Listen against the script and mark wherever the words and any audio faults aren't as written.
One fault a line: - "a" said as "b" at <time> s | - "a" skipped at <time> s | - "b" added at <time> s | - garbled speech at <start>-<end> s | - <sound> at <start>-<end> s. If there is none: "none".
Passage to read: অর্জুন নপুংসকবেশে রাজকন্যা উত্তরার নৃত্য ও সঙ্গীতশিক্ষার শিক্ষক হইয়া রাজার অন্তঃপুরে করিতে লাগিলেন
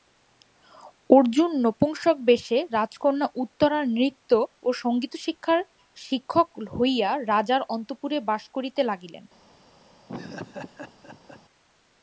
- "বাস" added at 8.3 s
- laugh at 10.1-11.4 s